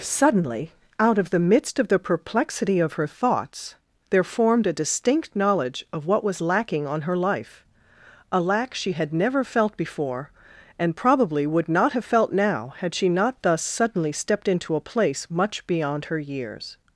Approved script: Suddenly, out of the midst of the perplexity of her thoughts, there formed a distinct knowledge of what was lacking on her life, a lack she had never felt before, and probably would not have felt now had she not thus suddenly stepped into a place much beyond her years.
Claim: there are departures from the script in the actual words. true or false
false